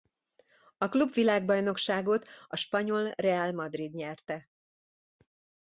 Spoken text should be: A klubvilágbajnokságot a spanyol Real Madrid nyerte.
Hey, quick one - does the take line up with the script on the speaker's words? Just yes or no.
yes